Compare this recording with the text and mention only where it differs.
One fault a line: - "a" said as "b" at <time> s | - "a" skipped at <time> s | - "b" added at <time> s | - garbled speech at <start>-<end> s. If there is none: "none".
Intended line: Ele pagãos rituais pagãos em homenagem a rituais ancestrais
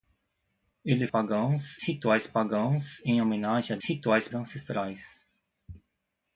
none